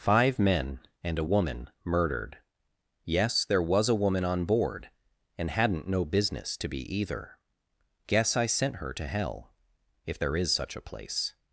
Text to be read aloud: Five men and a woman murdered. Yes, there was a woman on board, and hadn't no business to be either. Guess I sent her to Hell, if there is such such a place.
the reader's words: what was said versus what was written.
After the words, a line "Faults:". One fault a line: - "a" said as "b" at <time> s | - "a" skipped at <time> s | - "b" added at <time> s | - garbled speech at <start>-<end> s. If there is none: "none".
Five men and a woman murdered. Yes, there was a woman on board, and hadn't no business to be either. Guess I sent her to Hell, if there is such a place.
Faults:
- "such" skipped at 10.8 s